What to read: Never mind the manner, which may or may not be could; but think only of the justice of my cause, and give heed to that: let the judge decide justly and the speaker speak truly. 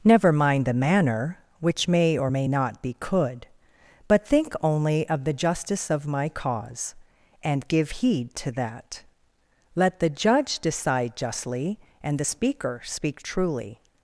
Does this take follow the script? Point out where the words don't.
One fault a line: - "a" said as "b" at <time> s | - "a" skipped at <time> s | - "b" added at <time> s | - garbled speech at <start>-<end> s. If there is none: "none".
none